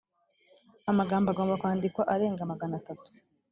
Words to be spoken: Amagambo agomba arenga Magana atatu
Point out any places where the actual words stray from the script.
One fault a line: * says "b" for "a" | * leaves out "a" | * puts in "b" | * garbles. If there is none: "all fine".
* puts in "kwandikwa"